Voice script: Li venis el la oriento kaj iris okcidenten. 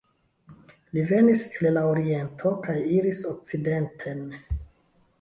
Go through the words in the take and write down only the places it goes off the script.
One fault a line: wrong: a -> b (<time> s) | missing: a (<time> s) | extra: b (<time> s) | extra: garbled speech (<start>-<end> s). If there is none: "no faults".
no faults